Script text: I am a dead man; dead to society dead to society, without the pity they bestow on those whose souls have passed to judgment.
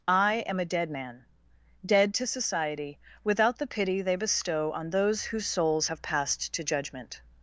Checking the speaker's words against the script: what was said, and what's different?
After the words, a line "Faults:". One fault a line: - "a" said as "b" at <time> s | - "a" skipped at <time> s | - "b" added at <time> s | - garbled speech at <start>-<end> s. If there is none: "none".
I am a dead man; dead to society, without the pity they bestow on those whose souls have passed to judgment.
Faults:
- "dead to society" skipped at 3.0 s